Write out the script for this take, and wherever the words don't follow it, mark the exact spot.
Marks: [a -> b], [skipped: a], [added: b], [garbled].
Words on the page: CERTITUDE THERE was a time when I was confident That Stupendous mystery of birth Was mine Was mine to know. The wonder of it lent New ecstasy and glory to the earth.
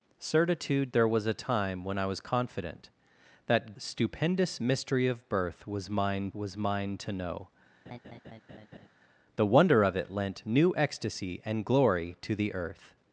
CERTITUDE THERE was a time when I was confident That Stupendous mystery of birth Was mine Was mine to know. The wonder of it lent New ecstasy and glory to the earth.